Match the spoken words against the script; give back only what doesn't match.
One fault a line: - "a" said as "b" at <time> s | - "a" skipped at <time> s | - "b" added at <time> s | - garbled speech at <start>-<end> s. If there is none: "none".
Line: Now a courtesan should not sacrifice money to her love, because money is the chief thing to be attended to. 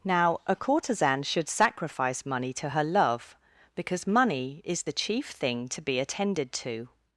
- "not" skipped at 1.5 s